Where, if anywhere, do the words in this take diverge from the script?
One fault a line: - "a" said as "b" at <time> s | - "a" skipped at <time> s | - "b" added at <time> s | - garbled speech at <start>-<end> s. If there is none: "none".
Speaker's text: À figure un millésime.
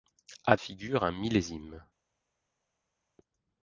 none